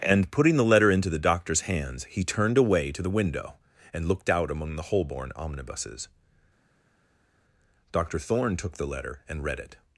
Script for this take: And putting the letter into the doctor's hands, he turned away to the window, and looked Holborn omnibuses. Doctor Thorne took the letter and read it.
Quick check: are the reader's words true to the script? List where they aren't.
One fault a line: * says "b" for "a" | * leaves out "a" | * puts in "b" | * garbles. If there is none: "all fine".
* puts in "out among the"